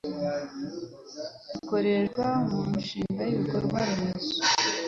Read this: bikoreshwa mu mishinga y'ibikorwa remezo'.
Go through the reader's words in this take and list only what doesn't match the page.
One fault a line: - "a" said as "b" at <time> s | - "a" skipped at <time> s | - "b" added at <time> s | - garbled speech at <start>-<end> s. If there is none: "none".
none